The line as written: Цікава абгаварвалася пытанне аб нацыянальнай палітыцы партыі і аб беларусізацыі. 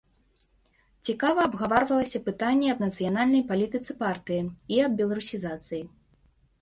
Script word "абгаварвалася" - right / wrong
right